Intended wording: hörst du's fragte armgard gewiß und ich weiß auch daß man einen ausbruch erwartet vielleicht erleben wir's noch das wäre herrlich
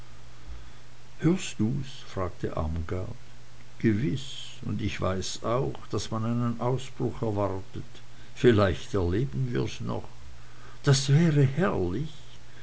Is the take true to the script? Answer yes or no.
yes